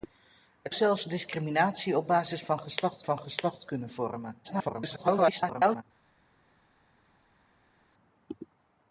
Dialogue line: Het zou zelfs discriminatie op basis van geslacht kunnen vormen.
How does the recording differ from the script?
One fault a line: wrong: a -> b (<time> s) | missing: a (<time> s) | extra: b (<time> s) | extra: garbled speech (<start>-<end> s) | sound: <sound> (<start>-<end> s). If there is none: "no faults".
missing: zou (0.8 s)
extra: van geslacht (3.0 s)
extra: garbled speech (4.4-5.8 s)